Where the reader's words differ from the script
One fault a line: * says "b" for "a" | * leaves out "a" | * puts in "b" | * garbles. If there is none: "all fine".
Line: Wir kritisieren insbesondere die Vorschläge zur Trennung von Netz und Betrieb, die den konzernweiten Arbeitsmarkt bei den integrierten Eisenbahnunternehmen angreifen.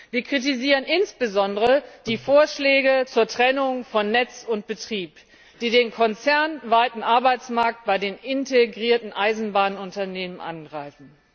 all fine